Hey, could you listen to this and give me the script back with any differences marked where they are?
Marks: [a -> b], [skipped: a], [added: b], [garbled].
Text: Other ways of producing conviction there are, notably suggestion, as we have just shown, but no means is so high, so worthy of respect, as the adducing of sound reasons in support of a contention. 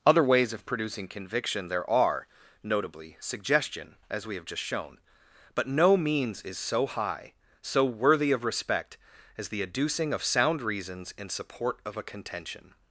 Other ways of producing conviction there are, notably suggestion, as we have just shown, but no means is so high, so worthy of respect, as the adducing of sound reasons in support of a contention.